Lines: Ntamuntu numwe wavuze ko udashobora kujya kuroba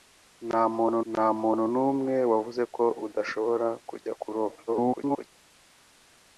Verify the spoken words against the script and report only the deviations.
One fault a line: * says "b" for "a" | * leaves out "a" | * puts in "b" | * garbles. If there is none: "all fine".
* puts in "ntamuntu"
* garbles